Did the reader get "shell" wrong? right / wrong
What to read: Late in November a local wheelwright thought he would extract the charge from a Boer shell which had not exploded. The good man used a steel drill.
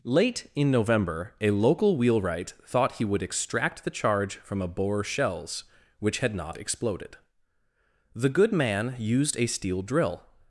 wrong